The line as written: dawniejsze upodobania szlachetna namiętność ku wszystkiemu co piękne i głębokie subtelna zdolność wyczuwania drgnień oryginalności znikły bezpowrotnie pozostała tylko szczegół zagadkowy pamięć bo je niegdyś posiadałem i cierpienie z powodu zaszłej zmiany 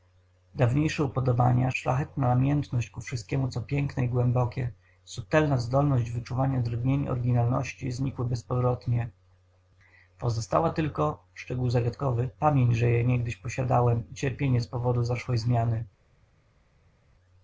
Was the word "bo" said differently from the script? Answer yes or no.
yes